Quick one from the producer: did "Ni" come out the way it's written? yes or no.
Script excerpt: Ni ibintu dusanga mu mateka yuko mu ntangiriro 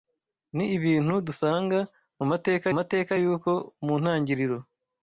yes